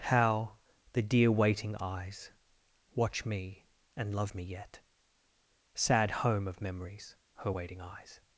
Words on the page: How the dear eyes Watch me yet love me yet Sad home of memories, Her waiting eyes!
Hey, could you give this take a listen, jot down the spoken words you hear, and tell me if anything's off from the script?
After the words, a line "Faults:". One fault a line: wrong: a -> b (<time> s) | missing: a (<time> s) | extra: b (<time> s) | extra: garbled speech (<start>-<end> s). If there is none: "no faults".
How the dear waiting eyes Watch me and love me yet Sad home of memories, Her waiting eyes!
Faults:
extra: waiting (1.3 s)
wrong: yet -> and (4.0 s)